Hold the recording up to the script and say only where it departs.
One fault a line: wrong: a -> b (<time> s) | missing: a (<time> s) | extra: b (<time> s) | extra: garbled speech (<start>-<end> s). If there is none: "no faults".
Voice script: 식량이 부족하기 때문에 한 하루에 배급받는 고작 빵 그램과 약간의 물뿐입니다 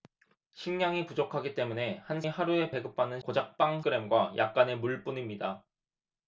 no faults